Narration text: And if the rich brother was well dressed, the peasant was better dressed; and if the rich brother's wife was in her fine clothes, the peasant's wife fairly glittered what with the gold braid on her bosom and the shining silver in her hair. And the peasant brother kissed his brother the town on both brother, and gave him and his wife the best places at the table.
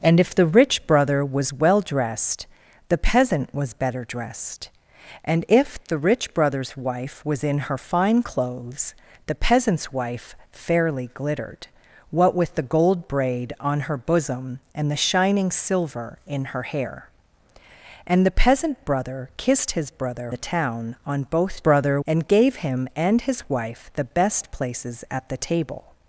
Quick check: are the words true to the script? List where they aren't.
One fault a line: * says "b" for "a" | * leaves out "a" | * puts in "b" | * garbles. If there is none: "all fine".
all fine